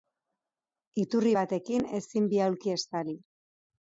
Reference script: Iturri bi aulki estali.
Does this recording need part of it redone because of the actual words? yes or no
yes